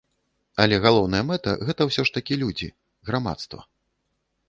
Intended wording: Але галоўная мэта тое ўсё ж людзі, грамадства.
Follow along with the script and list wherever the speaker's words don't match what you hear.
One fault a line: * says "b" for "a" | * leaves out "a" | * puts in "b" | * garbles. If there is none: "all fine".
* says "гэта" for "тое"
* puts in "такі"